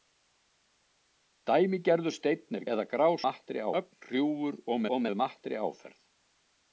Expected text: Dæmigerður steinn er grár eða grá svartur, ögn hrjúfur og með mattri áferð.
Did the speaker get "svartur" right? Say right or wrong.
wrong